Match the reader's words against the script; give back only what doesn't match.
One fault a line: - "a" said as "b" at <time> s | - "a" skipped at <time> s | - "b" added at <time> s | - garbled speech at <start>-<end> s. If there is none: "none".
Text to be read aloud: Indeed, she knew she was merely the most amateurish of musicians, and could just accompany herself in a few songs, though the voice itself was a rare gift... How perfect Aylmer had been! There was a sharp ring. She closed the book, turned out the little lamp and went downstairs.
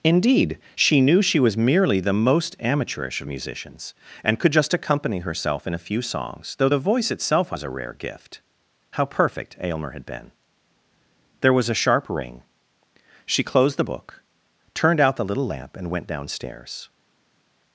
none